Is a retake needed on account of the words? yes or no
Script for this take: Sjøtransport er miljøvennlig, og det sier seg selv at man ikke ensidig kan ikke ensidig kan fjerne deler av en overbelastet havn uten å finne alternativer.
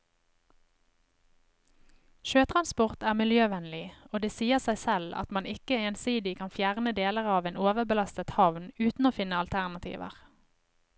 yes